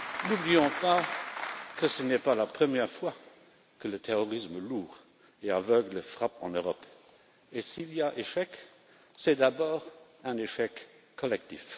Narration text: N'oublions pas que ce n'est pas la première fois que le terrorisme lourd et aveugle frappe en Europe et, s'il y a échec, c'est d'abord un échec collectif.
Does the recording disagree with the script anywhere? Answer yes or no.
no